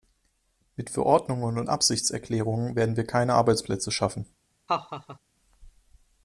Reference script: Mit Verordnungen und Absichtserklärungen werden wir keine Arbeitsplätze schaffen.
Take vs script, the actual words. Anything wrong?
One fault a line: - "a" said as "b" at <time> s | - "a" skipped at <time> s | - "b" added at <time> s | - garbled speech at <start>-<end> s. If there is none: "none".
none